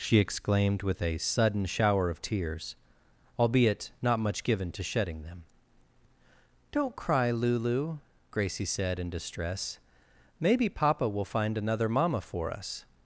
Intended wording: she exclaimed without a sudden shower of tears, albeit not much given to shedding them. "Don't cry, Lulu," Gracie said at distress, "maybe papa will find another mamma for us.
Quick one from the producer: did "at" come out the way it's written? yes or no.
no